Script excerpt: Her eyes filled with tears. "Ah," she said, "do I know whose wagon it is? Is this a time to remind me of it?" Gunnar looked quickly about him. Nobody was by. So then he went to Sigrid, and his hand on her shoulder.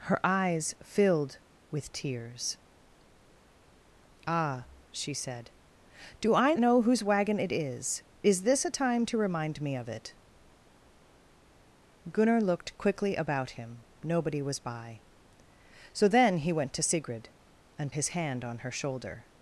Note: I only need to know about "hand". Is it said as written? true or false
true